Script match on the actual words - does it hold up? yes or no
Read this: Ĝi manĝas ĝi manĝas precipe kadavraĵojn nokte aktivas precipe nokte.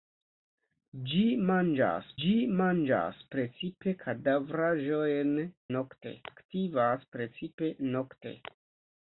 yes